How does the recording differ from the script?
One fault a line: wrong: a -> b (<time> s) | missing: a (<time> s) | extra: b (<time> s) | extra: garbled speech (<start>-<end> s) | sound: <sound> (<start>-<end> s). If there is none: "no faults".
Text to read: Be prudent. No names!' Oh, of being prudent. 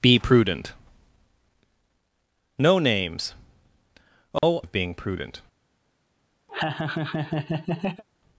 sound: dropout (4.4-4.4 s)
sound: laugh (6.5-8.0 s)